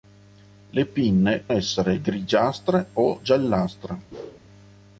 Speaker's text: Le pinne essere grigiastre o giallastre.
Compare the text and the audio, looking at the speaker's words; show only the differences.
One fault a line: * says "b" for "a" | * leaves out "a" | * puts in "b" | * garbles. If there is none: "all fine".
all fine